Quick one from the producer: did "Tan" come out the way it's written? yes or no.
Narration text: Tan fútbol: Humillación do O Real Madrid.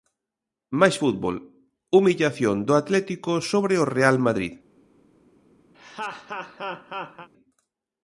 no